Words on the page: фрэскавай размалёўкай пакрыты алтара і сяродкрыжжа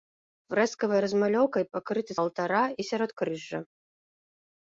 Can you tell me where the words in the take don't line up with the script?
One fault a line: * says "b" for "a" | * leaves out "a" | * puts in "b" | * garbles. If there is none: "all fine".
all fine